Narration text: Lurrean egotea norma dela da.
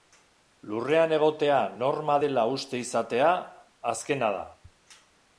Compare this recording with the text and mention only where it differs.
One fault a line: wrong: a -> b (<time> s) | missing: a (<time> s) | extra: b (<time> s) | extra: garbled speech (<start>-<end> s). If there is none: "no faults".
extra: uste izatea azkena (2.6 s)